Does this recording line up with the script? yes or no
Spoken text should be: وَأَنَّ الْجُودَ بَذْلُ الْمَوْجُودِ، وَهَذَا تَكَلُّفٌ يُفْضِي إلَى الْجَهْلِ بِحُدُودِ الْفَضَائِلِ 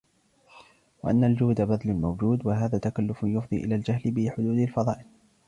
yes